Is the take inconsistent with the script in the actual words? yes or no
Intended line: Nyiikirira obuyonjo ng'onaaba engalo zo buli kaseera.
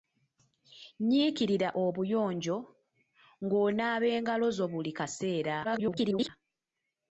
yes